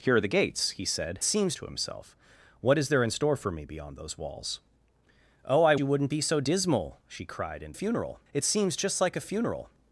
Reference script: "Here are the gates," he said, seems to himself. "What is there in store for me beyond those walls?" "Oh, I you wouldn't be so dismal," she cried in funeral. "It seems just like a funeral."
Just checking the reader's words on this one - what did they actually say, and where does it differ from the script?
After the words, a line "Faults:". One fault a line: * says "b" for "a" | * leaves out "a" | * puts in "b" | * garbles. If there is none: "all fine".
"Here are the gates," he said, seems to himself. "What is there in store for me beyond those walls?" "Oh, I you wouldn't be so dismal," she cried in funeral. "It seems just like a funeral."
Faults:
all fine